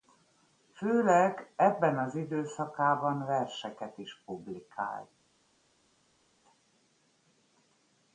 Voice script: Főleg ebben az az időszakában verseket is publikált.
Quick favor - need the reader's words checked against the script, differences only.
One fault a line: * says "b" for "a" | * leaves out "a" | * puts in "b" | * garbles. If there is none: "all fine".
* leaves out "az"